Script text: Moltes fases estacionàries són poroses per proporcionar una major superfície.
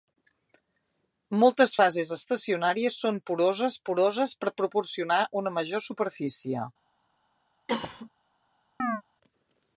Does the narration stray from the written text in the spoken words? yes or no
yes